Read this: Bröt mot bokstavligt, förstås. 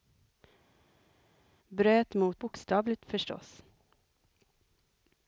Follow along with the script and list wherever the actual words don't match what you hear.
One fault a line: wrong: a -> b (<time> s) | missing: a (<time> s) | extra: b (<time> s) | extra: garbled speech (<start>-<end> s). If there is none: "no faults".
no faults